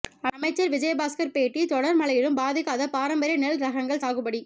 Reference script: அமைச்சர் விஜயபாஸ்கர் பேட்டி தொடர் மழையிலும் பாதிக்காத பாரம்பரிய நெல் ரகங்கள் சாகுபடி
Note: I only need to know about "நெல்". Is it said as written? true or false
true